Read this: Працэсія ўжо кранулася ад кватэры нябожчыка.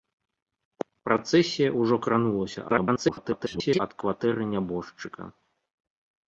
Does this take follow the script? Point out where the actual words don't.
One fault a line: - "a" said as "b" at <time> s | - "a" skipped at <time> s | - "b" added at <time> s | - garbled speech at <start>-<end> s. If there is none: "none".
- garbled speech at 2.7-3.8 s